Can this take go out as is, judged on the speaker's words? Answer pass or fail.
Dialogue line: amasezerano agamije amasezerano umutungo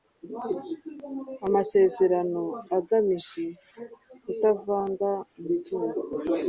fail